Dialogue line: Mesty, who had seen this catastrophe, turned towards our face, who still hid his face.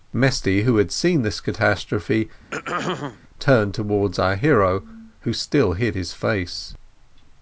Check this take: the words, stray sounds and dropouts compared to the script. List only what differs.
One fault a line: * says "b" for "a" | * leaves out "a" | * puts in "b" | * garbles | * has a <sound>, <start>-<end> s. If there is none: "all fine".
* has a throat clearing, 2.5-3.2 s
* says "hero" for "face"